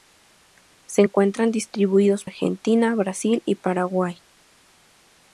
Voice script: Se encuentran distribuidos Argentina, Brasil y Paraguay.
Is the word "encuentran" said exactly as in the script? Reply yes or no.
yes